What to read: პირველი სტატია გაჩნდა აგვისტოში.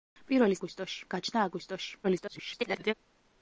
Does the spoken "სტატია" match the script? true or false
false